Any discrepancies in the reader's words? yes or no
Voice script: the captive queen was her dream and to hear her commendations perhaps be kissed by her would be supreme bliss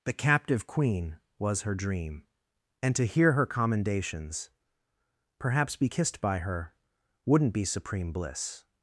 yes